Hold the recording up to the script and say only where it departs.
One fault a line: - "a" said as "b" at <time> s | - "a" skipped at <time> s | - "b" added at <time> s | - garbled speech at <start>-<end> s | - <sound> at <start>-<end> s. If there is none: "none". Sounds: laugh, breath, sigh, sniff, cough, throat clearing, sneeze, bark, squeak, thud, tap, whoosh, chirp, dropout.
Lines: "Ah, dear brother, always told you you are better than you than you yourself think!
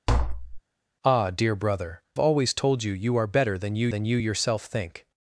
- tap at 0.1-0.6 s